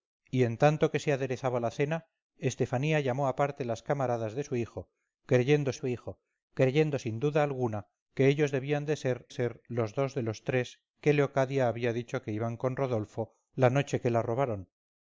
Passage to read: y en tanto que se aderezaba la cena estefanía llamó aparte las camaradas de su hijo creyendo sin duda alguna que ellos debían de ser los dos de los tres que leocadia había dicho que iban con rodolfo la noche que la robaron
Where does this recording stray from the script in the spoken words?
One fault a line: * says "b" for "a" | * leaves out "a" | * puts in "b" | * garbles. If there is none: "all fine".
* puts in "su hijo creyendo"
* puts in "ser"